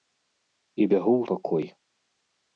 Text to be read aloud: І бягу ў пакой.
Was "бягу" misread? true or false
false